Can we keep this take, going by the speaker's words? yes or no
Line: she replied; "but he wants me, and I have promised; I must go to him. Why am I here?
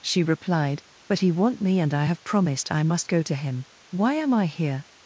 no